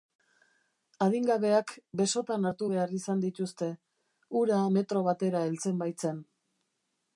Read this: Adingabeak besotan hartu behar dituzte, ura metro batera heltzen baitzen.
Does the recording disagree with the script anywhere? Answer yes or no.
yes